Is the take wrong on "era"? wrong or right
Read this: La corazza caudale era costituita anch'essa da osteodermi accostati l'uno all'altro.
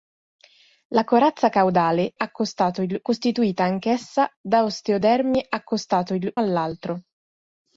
wrong